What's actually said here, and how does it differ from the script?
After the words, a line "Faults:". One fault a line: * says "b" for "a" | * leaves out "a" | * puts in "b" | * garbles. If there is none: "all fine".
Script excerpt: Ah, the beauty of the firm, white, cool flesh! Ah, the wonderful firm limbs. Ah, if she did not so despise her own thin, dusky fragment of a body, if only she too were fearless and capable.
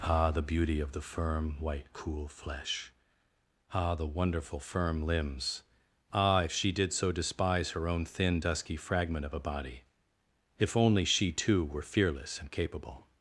Ah, the beauty of the firm, white, cool flesh! Ah, the wonderful firm limbs. Ah, if she did so despise her own thin, dusky fragment of a body, if only she too were fearless and capable.
Faults:
* leaves out "not"